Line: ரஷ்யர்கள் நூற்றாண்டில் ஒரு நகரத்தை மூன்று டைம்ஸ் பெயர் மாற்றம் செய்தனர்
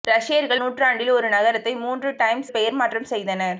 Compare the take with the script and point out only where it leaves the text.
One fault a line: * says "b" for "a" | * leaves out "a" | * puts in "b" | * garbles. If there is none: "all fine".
all fine